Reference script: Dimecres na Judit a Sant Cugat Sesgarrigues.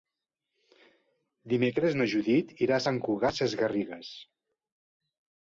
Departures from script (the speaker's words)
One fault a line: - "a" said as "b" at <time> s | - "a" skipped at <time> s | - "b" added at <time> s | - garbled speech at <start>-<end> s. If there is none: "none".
- "irà" added at 2.7 s